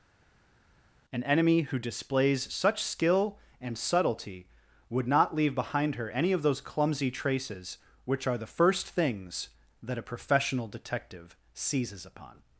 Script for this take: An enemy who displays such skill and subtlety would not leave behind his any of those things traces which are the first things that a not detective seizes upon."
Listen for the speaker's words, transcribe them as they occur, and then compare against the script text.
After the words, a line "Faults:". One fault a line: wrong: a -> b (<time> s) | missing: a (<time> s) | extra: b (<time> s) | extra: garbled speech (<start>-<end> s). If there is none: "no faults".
An enemy who displays such skill and subtlety would not leave behind her any of those clumsy traces which are the first things that a professional detective seizes upon."
Faults:
wrong: his -> her (6.0 s)
wrong: things -> clumsy (6.6 s)
wrong: not -> professional (10.0 s)